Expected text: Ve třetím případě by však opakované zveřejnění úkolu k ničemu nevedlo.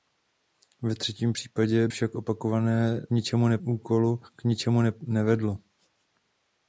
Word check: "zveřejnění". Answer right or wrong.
wrong